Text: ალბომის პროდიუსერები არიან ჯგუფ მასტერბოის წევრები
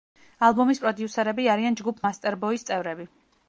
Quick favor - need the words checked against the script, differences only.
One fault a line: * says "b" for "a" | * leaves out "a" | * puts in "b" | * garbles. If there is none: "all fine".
all fine